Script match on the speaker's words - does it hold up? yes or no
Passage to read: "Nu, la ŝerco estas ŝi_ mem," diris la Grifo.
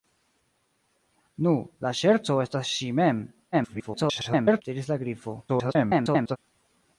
no